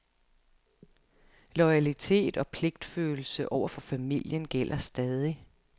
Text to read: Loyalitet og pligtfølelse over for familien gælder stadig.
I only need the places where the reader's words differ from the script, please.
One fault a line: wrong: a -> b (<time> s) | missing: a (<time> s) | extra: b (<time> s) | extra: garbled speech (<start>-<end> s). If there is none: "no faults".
no faults